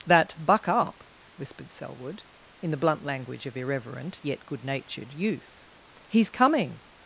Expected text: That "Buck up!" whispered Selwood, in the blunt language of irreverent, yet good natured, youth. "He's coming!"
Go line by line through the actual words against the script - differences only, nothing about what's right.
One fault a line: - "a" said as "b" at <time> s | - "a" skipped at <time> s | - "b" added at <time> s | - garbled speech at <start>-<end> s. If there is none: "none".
none